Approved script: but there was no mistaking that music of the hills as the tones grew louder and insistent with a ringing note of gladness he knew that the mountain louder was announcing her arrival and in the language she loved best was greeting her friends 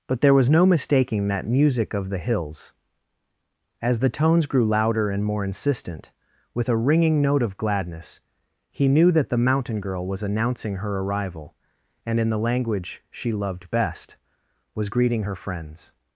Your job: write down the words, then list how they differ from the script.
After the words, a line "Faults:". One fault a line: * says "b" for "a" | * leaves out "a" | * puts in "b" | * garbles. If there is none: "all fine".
but there was no mistaking that music of the hills as the tones grew louder and more insistent with a ringing note of gladness he knew that the mountain girl was announcing her arrival and in the language she loved best was greeting her friends
Faults:
* puts in "more"
* says "girl" for "louder"